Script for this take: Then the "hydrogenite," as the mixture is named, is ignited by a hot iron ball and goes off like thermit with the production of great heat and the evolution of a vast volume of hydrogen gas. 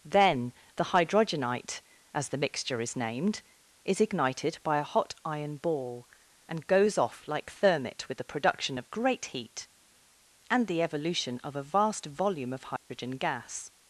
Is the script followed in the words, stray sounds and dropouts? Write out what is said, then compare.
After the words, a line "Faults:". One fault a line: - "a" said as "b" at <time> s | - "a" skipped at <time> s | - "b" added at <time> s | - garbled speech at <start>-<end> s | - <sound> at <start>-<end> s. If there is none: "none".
Then the "hydrogenite," as the mixture is named, is ignited by a hot iron ball and goes off like thermit with the production of great heat and the evolution of a vast volume of hydrogen gas.
Faults:
- dropout at 12.8-12.9 s